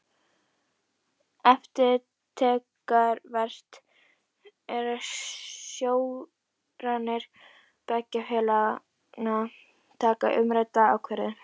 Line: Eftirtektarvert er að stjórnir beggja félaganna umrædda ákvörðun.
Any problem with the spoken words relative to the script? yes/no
yes